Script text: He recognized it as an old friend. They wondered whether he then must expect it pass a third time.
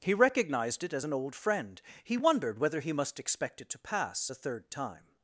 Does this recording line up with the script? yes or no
no